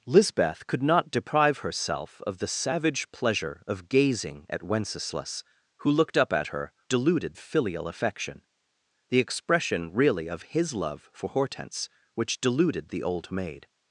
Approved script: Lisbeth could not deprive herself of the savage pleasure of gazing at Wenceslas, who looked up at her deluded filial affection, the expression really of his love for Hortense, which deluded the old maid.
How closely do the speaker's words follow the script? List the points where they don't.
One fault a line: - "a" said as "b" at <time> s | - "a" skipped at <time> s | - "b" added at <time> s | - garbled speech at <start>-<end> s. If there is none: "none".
none